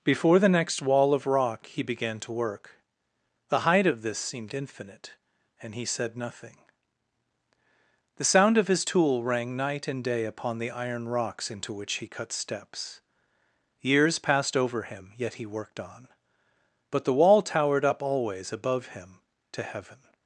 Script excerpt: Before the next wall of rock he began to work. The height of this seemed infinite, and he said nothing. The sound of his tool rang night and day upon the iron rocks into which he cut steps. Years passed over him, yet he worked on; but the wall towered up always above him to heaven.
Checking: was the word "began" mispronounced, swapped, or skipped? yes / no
no